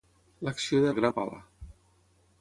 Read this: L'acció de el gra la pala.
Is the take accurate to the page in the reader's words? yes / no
yes